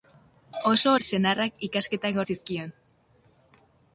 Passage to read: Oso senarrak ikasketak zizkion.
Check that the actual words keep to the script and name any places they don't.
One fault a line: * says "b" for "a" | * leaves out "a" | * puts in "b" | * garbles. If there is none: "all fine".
all fine